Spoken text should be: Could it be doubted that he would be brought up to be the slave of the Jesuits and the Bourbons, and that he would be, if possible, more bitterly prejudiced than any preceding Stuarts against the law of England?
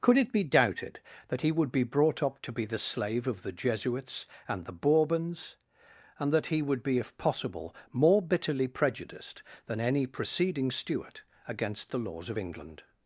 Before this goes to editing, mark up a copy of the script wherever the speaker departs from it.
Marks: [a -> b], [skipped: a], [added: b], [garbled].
Could it be doubted that he would be brought up to be the slave of the Jesuits and the Bourbons, and that he would be, if possible, more bitterly prejudiced than any preceding [Stuarts -> Stuart] against the [law -> laws] of England?